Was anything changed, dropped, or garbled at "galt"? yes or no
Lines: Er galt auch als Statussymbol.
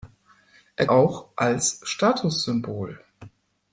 yes